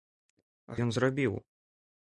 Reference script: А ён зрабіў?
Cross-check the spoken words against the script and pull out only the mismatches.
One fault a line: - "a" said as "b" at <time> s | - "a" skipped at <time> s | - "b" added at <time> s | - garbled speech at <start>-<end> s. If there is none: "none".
none